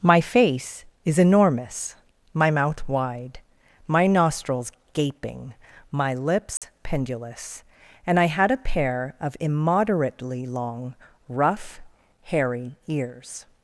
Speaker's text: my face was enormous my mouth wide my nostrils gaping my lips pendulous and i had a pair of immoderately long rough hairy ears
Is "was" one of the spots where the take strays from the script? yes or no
yes